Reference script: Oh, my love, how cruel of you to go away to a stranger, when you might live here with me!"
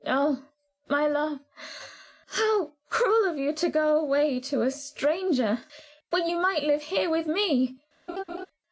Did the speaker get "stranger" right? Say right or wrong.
right